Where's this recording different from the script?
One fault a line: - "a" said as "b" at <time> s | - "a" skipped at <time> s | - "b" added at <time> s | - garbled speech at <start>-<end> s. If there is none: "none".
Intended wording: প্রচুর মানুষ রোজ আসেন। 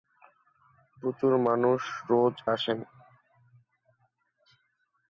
none